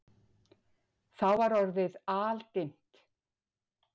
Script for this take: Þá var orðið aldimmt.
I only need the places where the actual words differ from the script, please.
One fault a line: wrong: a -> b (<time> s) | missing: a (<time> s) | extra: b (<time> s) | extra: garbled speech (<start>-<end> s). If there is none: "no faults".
no faults